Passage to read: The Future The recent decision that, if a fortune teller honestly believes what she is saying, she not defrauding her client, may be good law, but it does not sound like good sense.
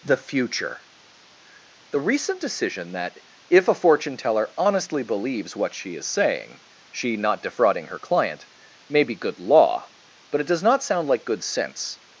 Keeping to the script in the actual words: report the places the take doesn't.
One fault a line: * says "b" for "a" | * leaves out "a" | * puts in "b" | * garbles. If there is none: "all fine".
all fine